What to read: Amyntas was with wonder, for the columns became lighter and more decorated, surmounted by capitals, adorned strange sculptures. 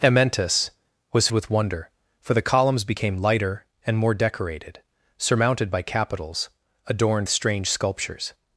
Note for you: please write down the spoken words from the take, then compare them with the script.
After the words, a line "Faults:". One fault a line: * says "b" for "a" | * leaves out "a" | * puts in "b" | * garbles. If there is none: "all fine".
Amyntas was with wonder, for the columns became lighter and more decorated, surmounted by capitals, adorned strange sculptures.
Faults:
all fine